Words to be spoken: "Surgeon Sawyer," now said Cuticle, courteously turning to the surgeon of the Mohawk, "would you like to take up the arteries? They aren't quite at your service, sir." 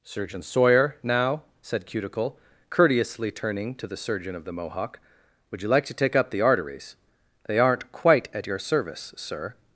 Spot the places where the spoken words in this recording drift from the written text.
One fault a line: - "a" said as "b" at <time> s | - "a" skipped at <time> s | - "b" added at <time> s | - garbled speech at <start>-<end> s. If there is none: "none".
none